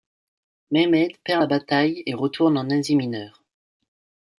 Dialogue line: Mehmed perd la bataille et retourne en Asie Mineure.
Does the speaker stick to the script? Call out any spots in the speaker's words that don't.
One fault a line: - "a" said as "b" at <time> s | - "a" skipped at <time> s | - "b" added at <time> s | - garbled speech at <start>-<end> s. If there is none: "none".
none